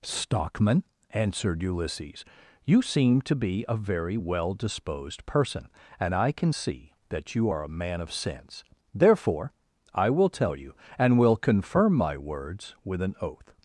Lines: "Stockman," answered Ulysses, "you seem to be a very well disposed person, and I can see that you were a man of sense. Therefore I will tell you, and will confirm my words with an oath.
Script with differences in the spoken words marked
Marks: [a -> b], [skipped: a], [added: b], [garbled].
"Stockman," answered Ulysses, "you seem to be a very well disposed person, and I can see that you [were -> are] a man of sense. Therefore I will tell you, and will confirm my words with an oath.